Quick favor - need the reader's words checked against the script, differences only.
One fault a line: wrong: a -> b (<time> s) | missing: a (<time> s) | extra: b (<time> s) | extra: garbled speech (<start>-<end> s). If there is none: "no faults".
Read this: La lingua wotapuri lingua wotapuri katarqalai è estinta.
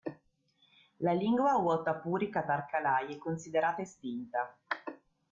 missing: lingua wotapuri (2.3 s)
extra: considerata (3.2 s)